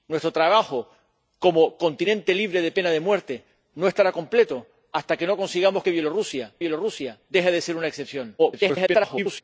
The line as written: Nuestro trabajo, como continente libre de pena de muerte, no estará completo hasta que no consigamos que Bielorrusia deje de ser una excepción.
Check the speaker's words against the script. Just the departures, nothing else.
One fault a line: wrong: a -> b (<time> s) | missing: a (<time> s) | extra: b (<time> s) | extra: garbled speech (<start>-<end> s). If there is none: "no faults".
extra: Bielorrusia (6.6 s)
extra: garbled speech (8.4-9.4 s)